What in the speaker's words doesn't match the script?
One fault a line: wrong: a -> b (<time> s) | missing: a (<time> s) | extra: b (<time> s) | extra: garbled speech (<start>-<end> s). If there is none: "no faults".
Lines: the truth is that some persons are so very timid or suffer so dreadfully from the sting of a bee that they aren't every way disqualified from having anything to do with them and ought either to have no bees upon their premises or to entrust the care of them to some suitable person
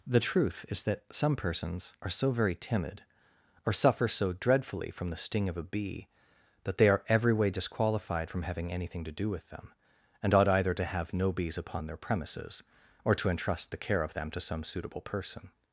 wrong: aren't -> are (6.9 s)